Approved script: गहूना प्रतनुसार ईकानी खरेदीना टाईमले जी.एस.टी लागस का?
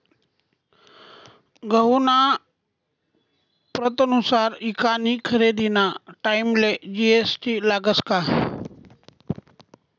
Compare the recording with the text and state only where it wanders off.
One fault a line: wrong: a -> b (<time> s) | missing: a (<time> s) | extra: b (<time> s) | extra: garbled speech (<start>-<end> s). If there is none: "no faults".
no faults